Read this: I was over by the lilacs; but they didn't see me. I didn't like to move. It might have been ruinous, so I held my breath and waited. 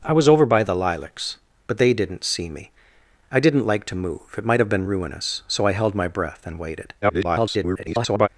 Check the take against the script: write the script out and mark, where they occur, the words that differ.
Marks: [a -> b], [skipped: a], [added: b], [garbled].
I was over by the lilacs; but they didn't see me. I didn't like to move. It might have been ruinous, so I held my breath and waited. [garbled]